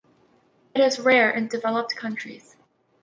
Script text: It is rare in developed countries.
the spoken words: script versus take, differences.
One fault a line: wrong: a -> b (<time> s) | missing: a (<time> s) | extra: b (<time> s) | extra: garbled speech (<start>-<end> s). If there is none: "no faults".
no faults